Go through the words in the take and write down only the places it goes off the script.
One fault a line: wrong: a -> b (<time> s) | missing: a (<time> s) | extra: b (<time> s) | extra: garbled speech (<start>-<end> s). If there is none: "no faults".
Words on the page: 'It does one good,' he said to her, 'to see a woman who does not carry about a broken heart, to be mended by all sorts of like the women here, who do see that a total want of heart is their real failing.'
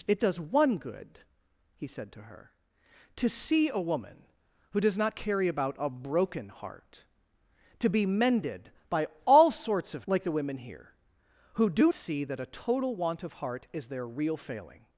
no faults